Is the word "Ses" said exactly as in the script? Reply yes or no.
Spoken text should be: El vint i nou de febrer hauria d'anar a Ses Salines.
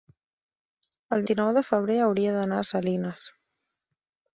no